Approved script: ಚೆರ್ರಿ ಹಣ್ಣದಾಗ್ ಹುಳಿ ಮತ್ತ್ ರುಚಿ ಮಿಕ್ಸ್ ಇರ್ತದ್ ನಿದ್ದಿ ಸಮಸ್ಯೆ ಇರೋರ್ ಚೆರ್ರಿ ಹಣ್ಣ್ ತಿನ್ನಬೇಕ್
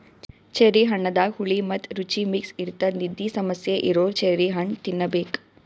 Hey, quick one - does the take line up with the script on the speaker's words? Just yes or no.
yes